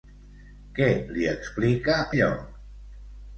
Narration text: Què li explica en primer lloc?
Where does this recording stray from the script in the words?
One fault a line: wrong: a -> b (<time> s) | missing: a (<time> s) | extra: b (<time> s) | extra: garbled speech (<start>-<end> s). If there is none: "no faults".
missing: en primer (2.0 s)